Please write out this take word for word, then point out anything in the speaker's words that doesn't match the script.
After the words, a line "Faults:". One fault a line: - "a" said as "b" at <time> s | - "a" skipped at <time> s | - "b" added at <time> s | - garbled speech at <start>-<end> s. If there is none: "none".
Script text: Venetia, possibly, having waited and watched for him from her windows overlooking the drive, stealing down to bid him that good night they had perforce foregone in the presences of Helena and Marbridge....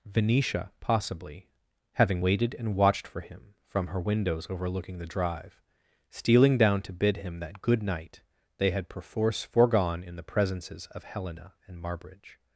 Venetia, possibly, having waited and watched for him from her windows overlooking the drive, stealing down to bid him that good night they had perforce foregone in the presences of Helena and Marbridge....
Faults:
none